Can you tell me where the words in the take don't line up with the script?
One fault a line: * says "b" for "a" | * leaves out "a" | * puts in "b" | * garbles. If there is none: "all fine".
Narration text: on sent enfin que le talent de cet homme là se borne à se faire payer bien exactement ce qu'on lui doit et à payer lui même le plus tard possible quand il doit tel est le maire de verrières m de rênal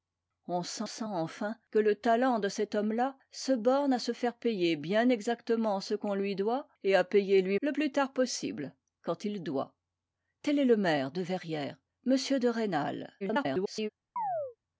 * puts in "sent"
* leaves out "même"
* garbles